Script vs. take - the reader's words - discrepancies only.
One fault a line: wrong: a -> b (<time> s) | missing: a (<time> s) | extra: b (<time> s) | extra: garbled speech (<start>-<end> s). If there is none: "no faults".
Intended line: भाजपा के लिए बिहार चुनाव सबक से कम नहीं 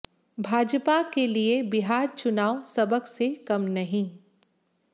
no faults